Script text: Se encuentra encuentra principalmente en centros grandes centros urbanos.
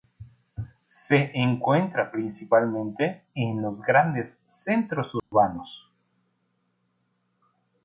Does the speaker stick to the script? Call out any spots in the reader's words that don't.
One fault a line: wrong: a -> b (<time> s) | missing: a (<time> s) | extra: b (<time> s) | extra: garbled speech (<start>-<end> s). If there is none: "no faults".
missing: encuentra (2.1 s)
wrong: centros -> los (3.6 s)